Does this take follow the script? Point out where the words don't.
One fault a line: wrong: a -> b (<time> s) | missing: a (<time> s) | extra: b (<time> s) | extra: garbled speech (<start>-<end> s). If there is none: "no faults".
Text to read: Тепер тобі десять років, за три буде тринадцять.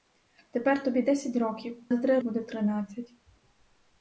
no faults